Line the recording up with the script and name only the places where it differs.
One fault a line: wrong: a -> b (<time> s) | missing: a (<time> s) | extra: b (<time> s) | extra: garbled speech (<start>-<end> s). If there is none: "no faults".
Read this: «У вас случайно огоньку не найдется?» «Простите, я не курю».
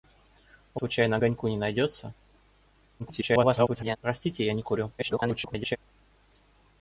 missing: вас (0.8 s)
extra: garbled speech (3.0-4.0 s)
extra: garbled speech (5.0-5.8 s)